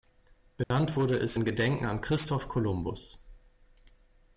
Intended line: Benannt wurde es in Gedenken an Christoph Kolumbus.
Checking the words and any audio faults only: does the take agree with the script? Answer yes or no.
no